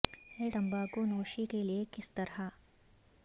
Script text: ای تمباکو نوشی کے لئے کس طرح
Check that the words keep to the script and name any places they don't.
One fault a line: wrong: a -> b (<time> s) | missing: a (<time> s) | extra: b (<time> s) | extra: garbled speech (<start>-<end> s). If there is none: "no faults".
no faults